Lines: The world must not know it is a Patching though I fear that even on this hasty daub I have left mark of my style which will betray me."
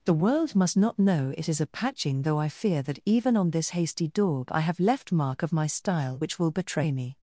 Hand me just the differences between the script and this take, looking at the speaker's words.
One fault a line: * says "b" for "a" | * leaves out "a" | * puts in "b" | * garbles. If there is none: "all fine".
all fine